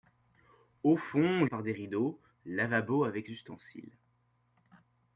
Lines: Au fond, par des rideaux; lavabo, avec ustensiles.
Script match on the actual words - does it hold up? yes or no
yes